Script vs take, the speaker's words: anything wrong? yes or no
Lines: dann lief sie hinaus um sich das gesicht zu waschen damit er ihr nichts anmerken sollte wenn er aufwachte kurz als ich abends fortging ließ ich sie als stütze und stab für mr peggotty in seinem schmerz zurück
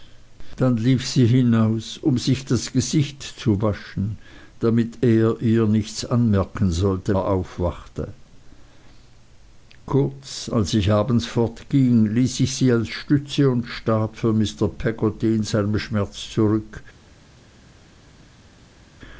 yes